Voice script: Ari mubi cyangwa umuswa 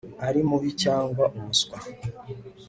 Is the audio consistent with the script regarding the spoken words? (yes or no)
yes